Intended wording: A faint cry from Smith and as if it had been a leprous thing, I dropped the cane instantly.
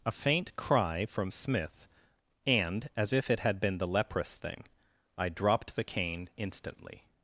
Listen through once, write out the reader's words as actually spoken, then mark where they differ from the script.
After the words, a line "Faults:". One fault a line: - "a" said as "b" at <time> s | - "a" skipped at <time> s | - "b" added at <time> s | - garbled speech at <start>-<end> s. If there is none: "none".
A faint cry from Smith and as if it had been the leprous thing, I dropped the cane instantly.
Faults:
- "a" said as "the" at 3.8 s